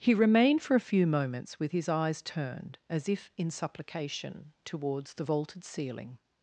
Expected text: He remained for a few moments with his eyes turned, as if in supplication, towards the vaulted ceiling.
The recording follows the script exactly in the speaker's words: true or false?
true